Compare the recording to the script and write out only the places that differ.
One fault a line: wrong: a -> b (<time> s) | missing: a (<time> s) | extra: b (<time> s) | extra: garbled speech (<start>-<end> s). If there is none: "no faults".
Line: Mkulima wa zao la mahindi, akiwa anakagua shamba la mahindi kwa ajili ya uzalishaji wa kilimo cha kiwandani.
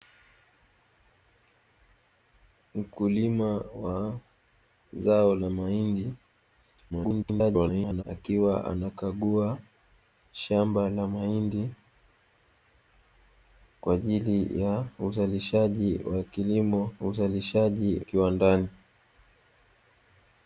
extra: garbled speech (6.9-8.0 s)
wrong: cha -> uzalishaji (17.0 s)